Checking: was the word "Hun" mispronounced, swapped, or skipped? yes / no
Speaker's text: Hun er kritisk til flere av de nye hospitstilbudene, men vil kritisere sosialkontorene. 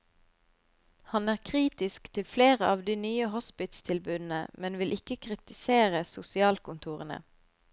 yes